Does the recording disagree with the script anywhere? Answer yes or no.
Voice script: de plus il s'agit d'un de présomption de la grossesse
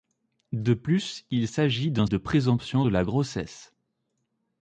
no